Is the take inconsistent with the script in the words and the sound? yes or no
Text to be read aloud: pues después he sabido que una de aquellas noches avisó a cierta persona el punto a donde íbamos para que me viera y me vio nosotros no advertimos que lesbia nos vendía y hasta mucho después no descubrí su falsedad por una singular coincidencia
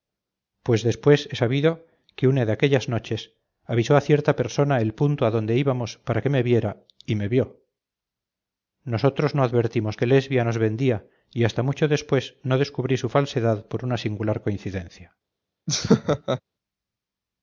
yes